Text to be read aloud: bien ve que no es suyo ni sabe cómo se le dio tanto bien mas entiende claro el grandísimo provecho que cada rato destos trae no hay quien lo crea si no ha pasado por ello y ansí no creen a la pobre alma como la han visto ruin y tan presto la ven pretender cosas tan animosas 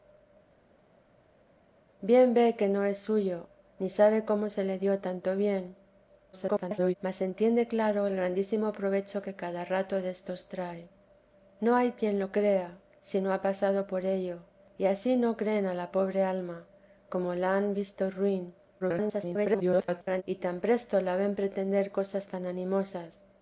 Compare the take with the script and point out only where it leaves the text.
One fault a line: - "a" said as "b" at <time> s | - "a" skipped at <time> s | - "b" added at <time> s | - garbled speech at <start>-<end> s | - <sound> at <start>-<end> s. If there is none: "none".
- garbled speech at 6.3-7.0 s
- garbled speech at 18.8-20.2 s